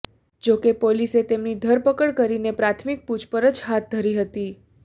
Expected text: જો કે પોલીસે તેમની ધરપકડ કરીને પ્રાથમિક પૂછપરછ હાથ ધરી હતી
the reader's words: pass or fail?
pass